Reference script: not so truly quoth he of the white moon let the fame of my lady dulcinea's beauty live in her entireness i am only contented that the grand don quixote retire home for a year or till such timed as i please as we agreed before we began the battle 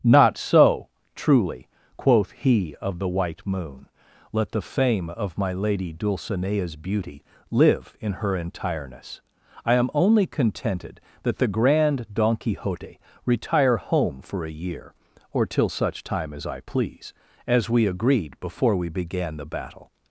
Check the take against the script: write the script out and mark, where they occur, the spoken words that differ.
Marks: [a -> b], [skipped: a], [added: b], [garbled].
not so truly quoth he of the white moon let the fame of my lady dulcinea's beauty live in her entireness i am only contented that the grand don quixote retire home for a year or till such [timed -> time] as i please as we agreed before we began the battle